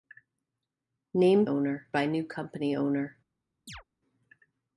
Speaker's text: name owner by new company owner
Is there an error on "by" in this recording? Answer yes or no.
no